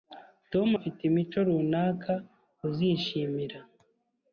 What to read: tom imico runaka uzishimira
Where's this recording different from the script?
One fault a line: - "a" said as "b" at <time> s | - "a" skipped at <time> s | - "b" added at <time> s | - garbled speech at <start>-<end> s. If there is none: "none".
- "afite" added at 0.7 s